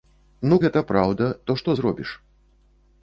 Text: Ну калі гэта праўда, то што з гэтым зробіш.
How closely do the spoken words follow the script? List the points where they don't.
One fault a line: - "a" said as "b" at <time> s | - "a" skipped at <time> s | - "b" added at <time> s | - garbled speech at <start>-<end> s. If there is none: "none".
- "калі" skipped at 0.6 s
- "з гэтым" skipped at 1.7 s